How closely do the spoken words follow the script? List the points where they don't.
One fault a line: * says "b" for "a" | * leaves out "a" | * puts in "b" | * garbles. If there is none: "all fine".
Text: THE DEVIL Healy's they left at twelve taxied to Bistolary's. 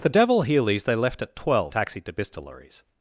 all fine